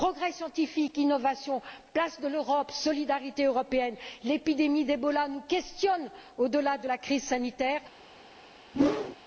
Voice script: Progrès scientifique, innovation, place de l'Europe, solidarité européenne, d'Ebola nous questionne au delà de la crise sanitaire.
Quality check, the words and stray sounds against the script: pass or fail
fail